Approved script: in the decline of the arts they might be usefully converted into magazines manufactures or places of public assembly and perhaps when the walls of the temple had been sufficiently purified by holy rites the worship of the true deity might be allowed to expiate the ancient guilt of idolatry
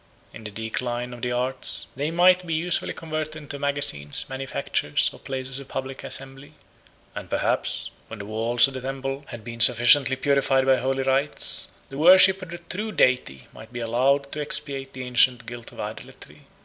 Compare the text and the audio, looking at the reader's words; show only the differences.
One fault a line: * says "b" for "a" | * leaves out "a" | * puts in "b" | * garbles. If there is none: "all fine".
all fine